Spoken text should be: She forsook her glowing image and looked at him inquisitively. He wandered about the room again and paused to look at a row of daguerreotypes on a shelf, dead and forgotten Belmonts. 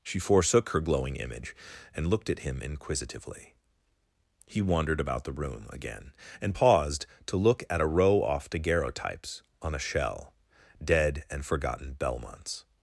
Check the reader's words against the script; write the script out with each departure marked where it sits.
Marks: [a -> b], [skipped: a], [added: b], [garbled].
She forsook her glowing image and looked at him inquisitively. He wandered about the room again and paused to look at a row [of -> off] daguerreotypes on a [shelf, -> shell] dead and forgotten Belmonts.